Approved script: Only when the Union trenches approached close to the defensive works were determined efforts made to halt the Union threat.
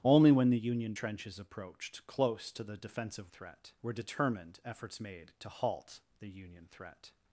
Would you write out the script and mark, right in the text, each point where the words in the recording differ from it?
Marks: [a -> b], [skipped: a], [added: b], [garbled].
Only when the Union trenches approached close to the defensive [works -> threat] were determined efforts made to halt the Union threat.